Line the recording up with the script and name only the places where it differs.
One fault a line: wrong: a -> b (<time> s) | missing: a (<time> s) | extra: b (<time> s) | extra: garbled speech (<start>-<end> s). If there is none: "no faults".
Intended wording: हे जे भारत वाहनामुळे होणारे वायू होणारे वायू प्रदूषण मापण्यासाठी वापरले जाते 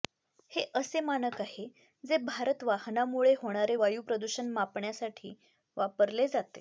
extra: असे मानक आहे (0.8 s)
missing: होणारे वायू (4.0 s)